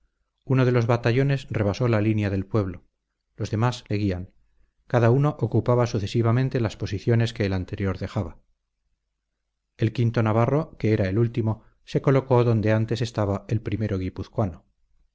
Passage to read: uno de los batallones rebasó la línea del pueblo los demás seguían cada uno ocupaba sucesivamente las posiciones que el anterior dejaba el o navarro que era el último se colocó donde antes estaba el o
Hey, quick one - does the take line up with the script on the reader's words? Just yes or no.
yes